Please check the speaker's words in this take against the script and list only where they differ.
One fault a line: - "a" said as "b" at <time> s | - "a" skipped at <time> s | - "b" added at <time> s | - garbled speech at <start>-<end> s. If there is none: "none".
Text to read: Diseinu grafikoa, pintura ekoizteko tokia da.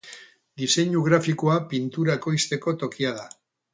none